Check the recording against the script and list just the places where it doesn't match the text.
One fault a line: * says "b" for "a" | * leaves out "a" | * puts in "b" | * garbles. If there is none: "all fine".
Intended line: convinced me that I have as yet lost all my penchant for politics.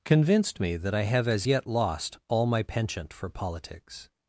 all fine